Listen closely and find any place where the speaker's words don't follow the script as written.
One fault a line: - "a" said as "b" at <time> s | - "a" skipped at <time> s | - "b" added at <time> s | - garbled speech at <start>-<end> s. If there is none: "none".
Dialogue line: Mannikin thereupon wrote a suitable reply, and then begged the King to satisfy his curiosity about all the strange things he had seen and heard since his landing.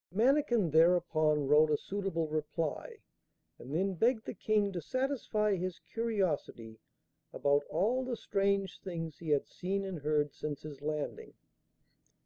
none